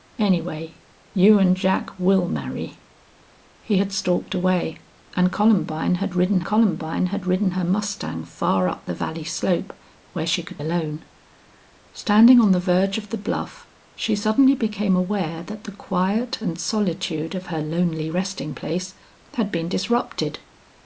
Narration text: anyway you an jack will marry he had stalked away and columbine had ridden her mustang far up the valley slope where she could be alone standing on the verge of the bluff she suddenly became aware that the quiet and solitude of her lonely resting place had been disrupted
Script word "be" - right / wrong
wrong